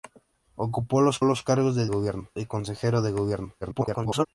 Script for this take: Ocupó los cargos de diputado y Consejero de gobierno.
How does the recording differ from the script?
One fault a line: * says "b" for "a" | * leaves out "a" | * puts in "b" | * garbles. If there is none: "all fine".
* puts in "los"
* says "gobierno" for "diputado"
* garbles